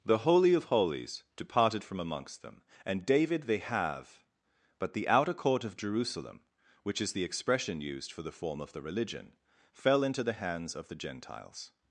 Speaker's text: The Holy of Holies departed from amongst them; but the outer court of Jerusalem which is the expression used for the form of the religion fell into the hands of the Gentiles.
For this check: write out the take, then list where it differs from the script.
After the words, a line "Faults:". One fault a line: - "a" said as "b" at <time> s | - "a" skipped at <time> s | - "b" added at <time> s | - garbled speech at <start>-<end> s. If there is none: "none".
The Holy of Holies departed from amongst them; and david they have but the outer court of Jerusalem which is the expression used for the form of the religion fell into the hands of the Gentiles.
Faults:
- "and david they have" added at 2.9 s